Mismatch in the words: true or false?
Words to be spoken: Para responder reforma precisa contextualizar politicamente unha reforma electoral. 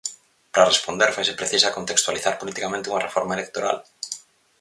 true